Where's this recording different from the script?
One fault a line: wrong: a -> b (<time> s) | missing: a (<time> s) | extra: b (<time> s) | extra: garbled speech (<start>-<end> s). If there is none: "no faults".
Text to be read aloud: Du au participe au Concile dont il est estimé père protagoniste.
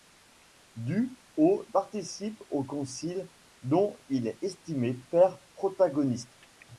no faults